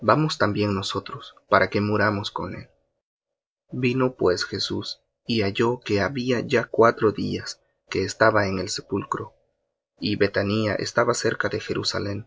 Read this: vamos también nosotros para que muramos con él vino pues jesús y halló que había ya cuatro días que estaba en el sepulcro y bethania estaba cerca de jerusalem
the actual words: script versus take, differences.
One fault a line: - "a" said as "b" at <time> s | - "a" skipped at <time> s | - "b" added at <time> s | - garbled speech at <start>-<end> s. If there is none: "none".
none